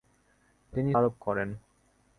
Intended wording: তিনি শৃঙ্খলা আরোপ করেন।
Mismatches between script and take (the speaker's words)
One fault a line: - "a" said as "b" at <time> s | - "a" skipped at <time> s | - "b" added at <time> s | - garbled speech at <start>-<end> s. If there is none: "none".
- "শৃঙ্খলা" skipped at 0.9 s